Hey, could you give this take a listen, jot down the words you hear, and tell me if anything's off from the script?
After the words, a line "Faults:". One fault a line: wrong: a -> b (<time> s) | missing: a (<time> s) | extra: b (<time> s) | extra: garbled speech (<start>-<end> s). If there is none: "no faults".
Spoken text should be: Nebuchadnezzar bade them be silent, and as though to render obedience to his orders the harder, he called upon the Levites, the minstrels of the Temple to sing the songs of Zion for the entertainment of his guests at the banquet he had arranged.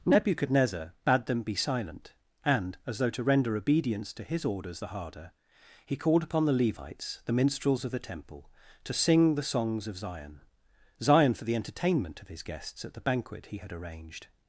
Nebuchadnezzar bade them be silent, and as though to render obedience to his orders the harder, he called upon the Levites, the minstrels of the Temple to sing the songs of Zion Zion for the entertainment of his guests at the banquet he had arranged.
Faults:
extra: Zion (11.0 s)